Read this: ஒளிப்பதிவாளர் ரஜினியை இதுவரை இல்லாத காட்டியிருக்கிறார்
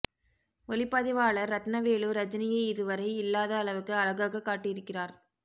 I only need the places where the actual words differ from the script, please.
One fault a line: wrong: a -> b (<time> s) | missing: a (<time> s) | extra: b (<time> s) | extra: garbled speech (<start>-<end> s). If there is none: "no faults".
extra: ரத்னவேலு (1.5 s)
extra: அளவுக்கு அழகாக (3.6 s)